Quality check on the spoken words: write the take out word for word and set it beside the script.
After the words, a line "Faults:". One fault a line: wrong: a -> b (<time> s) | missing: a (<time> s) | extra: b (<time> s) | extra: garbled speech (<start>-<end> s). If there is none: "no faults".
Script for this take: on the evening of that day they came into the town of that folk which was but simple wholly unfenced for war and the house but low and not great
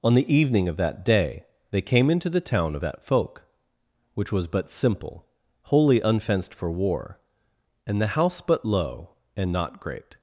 on the evening of that day they came into the town of that folk which was but simple wholly unfenced for war and the house but low and not great
Faults:
no faults